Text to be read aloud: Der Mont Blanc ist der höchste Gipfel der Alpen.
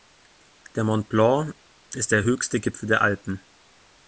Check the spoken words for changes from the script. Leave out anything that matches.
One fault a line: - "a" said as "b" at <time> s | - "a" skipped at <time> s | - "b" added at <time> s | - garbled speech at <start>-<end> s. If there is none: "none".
none